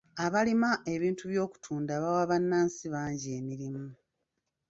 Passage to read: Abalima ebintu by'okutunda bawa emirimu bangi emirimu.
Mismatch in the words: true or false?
true